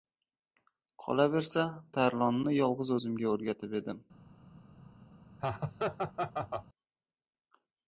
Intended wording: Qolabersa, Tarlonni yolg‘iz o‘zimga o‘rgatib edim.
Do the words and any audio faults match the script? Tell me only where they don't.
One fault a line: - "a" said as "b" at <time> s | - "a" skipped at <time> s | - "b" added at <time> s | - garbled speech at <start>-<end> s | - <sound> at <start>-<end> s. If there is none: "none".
- laugh at 5.4-6.7 s